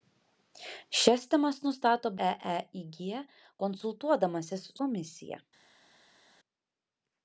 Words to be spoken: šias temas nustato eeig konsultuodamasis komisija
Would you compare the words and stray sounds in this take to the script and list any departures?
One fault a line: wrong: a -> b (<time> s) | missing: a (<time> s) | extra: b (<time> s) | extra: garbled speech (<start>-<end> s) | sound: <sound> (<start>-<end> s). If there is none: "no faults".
no faults